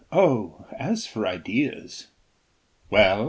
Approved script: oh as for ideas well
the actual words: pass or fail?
pass